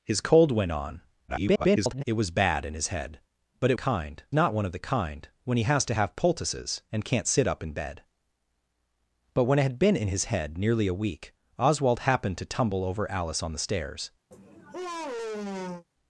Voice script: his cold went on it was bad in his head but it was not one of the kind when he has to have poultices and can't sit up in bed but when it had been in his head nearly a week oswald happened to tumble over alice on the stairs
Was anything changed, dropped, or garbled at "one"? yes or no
no